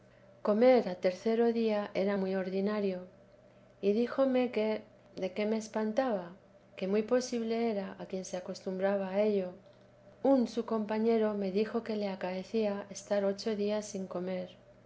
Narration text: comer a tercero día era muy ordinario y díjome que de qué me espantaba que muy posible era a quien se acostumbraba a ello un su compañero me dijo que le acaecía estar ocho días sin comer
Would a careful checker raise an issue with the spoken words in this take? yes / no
no